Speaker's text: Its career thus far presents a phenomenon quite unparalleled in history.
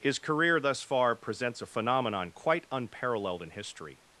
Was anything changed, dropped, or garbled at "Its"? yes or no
yes